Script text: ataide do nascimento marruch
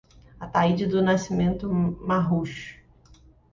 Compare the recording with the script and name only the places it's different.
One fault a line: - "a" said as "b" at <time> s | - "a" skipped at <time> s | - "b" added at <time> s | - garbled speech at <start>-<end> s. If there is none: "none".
none